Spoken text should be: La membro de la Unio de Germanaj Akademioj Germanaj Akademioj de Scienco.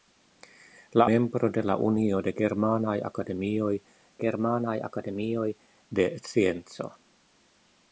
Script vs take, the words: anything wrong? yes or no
no